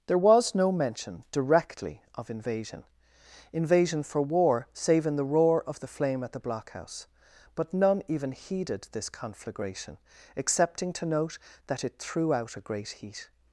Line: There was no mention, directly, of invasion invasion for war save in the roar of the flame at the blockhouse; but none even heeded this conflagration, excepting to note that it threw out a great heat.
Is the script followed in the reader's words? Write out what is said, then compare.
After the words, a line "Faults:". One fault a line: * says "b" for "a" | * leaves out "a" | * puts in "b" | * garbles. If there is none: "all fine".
There was no mention, directly, of invasion invasion for war save in the roar of the flame at the blockhouse; but none even heeded this conflagration, excepting to note that it threw out a great heat.
Faults:
all fine